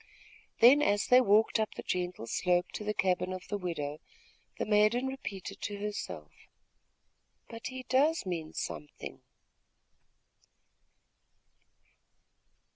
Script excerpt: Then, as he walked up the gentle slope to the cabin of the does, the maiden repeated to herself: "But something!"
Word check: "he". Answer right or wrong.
wrong